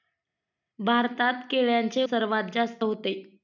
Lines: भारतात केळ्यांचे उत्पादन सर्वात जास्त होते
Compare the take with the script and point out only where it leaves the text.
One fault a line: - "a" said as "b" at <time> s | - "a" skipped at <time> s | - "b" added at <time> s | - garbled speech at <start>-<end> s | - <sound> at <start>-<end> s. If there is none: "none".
- "उत्पादन" skipped at 2.0 s